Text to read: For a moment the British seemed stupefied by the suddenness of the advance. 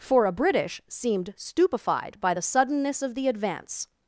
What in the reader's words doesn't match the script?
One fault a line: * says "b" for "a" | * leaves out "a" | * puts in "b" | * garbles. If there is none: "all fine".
* leaves out "moment the"